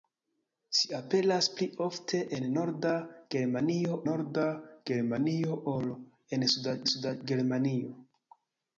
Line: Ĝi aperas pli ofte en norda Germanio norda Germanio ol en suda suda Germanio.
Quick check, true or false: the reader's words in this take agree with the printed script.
true